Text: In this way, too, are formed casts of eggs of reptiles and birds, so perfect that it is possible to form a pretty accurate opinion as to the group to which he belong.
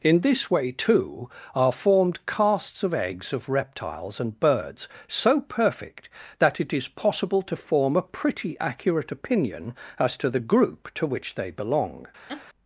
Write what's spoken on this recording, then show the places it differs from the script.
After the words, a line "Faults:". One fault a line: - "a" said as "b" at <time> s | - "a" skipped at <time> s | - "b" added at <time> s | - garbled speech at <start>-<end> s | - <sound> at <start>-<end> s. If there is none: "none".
In this way, too, are formed casts of eggs of reptiles and birds, so perfect that it is possible to form a pretty accurate opinion as to the group to which they belong.
Faults:
- "he" said as "they" at 11.3 s
- laugh at 12.3-12.4 s